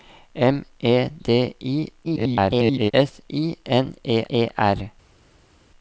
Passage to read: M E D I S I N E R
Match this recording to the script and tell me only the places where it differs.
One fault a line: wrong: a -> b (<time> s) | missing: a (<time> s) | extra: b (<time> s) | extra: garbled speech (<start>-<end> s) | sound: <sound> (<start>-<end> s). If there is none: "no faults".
extra: garbled speech (2.0-2.9 s)
extra: E (4.3 s)